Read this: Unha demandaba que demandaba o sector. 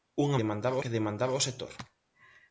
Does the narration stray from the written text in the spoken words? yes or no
no